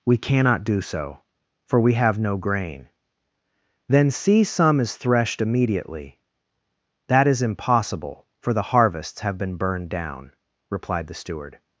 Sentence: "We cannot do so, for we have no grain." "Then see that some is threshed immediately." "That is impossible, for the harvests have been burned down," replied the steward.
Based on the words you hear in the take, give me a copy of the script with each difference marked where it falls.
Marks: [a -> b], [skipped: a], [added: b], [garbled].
"We cannot do so, for we have no grain." "Then see [skipped: that] some is threshed immediately." "That is impossible, for the harvests have been burned down," replied the steward.